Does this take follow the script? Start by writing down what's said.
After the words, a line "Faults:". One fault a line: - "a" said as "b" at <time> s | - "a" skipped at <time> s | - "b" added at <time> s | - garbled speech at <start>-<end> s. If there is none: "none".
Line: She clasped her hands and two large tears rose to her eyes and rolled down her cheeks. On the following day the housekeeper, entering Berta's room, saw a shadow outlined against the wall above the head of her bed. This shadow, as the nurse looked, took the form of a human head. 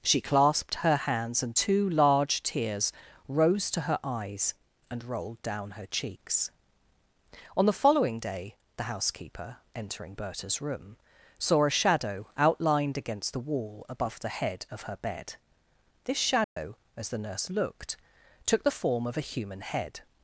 She clasped her hands and two large tears rose to her eyes and rolled down her cheeks. On the following day the housekeeper, entering Berta's room, saw a shadow outlined against the wall above the head of her bed. This shadow, as the nurse looked, took the form of a human head.
Faults:
none